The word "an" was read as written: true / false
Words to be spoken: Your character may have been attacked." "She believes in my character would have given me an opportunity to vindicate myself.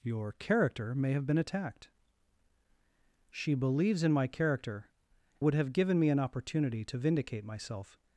true